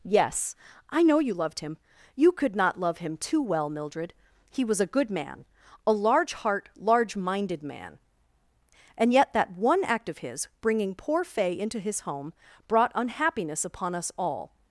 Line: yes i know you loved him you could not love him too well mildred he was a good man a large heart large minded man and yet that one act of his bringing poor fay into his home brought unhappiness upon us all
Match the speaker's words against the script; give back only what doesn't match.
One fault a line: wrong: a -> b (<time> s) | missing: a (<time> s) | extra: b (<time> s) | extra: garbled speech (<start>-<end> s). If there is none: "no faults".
no faults